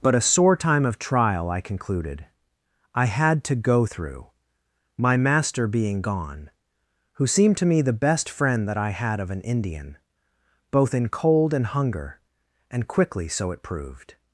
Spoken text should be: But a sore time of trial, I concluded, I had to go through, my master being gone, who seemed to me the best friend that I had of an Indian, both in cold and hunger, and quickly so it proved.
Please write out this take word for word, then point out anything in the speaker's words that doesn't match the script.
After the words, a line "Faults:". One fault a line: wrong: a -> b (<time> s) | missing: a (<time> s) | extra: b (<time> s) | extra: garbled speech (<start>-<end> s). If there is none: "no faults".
But a sore time of trial, I concluded, I had to go through, my master being gone, who seemed to me the best friend that I had of an Indian, both in cold and hunger, and quickly so it proved.
Faults:
no faults